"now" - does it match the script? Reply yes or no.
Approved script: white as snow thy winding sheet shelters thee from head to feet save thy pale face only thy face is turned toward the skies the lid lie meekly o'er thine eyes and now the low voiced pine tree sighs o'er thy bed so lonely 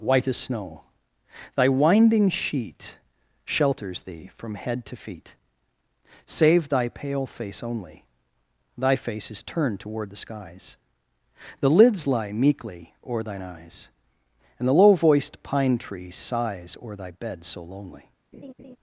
no